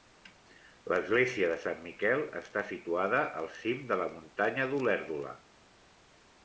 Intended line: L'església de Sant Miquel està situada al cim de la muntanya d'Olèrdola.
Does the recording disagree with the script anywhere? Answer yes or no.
no